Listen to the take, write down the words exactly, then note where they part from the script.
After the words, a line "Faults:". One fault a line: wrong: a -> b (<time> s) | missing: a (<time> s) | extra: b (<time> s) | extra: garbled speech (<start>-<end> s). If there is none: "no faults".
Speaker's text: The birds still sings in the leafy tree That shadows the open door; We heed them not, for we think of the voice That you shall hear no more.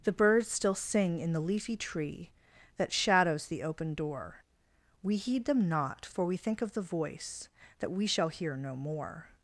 The birds still sing in the leafy tree That shadows the open door; We heed them not, for we think of the voice That we shall hear no more.
Faults:
wrong: sings -> sing (0.8 s)
wrong: you -> we (7.9 s)